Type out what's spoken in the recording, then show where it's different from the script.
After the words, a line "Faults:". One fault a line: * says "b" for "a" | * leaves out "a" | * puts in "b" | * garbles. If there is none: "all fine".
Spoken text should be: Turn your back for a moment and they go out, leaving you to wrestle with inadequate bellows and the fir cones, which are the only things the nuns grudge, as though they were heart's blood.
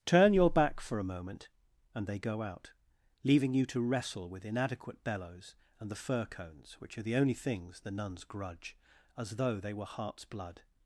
Turn your back for a moment and they go out, leaving you to wrestle with inadequate bellows and the fir cones, which are the only things the nuns grudge, as though they were heart's blood.
Faults:
all fine